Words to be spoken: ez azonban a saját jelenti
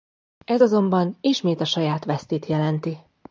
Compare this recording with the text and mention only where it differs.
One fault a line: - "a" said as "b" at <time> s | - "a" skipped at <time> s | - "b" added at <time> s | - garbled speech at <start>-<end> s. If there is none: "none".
- "ismét" added at 1.2 s
- "vesztét" added at 2.0 s